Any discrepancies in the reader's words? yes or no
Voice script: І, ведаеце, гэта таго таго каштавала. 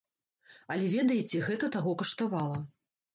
yes